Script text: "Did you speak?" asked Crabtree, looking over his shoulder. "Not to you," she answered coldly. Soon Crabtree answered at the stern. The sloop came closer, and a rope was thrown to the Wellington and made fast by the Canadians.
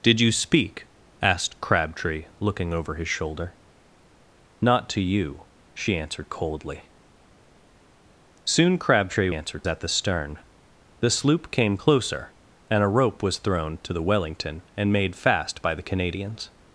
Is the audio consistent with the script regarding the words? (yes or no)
yes